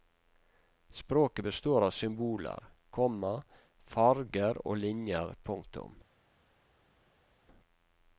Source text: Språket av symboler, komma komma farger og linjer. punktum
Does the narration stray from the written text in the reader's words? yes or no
yes